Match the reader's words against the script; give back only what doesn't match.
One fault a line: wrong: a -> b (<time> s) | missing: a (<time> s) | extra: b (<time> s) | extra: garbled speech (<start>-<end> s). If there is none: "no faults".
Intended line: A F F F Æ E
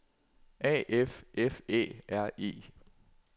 wrong: F Æ -> Æ R (1.7 s)